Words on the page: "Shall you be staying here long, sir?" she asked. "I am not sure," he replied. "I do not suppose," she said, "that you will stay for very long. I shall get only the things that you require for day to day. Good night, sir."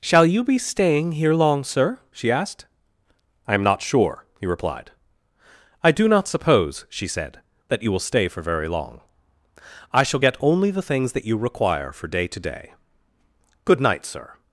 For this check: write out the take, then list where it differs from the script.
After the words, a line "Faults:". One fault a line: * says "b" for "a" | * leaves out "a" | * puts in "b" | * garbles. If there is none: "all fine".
"Shall you be staying here long, sir?" she asked. "I am not sure," he replied. "I do not suppose," she said, "that you will stay for very long. I shall get only the things that you require for day to day. Good night, sir."
Faults:
all fine